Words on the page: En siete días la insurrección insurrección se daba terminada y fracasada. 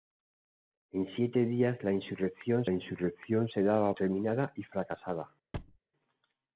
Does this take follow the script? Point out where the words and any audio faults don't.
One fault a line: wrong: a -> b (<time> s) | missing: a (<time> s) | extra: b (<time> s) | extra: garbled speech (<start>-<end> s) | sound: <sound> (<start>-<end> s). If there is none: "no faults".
sound: thud (5.5-5.8 s)